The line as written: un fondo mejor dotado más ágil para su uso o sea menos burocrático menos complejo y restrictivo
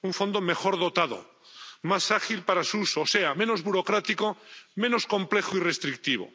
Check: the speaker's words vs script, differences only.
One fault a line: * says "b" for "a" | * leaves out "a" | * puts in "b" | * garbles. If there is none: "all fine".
all fine